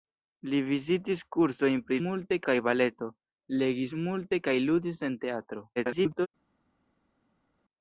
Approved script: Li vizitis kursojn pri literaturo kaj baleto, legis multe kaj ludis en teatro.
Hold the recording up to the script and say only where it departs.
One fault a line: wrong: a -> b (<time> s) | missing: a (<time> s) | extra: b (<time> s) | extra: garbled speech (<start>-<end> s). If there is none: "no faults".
wrong: literaturo -> multe (2.1 s)
extra: garbled speech (5.8-6.3 s)